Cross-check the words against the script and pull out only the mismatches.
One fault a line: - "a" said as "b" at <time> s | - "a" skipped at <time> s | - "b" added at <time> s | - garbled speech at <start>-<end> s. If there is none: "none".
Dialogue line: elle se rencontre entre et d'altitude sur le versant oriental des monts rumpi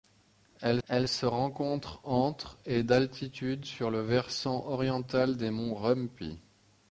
- "elle" added at 0.9 s